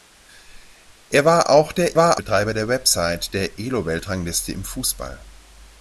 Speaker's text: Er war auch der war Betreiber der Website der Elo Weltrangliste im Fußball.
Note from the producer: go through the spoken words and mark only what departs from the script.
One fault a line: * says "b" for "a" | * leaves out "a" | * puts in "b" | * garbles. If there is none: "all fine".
all fine